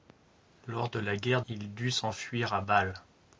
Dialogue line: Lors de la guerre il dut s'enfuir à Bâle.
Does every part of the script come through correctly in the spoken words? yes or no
yes